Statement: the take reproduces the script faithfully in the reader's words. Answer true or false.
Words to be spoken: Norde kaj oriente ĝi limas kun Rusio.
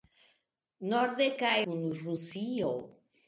false